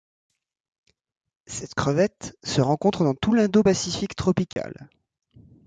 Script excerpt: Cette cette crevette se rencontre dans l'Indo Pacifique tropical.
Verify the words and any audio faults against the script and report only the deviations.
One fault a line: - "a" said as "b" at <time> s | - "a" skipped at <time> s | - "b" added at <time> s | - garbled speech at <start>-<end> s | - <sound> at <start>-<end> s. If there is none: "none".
- "cette" skipped at 1.8 s
- "tout" added at 3.1 s
- dropout at 4.5-4.6 s